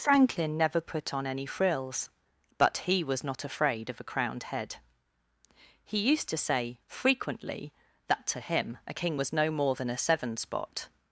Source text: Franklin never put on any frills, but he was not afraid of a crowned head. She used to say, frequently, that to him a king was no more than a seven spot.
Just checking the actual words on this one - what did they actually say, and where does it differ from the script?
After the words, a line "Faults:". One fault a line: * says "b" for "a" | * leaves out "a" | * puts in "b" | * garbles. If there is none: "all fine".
Franklin never put on any frills, but he was not afraid of a crowned head. He used to say, frequently, that to him a king was no more than a seven spot.
Faults:
* says "He" for "She"